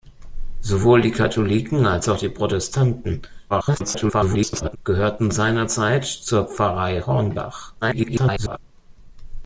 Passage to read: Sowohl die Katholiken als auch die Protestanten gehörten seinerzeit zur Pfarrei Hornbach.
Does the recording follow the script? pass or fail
fail